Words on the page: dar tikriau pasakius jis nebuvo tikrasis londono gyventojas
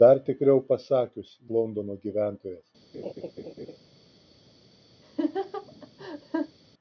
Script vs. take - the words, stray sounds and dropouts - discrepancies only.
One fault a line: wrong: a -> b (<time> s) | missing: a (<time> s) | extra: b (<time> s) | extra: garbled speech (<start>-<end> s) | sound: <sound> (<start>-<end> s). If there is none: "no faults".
missing: jis nebuvo tikrasis (1.3 s)
sound: laugh (2.9-3.8 s)
sound: laugh (5.0-6.6 s)